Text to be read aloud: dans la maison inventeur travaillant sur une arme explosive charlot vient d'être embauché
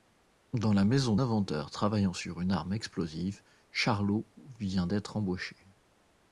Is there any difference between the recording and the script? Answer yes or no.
no